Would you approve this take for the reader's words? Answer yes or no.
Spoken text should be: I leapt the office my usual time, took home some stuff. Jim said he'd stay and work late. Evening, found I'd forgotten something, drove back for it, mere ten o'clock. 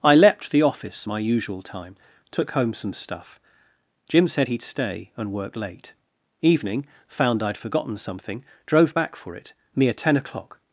yes